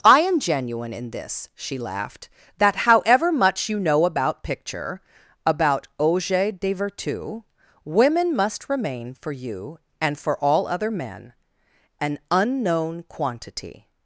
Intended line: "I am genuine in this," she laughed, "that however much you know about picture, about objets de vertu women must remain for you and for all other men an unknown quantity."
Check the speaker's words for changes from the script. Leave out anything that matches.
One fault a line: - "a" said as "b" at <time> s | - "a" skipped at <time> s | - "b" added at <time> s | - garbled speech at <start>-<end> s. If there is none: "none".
none